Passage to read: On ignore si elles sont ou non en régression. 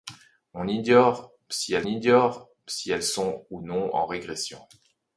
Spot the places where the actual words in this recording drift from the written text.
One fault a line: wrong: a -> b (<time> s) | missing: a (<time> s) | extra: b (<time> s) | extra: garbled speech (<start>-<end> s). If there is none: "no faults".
extra: ignore si elles (1.8 s)